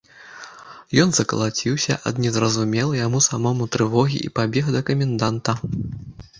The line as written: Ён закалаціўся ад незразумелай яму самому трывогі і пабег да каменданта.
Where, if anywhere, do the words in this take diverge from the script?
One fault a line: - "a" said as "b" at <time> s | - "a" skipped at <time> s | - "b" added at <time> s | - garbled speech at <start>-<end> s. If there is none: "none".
none